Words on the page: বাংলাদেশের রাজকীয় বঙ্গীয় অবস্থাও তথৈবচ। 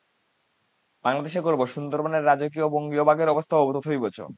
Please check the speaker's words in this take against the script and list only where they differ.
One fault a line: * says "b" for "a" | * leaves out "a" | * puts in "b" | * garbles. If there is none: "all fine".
* puts in "গর্ব সুন্দরবনের"
* puts in "বাঘের"